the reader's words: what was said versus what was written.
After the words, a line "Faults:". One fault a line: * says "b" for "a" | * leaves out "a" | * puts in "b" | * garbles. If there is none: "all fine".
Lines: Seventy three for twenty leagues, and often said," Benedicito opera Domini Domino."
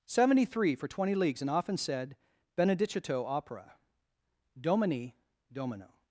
Seventy three for twenty leagues, and often said," Benedicito opera Domini Domino."
Faults:
all fine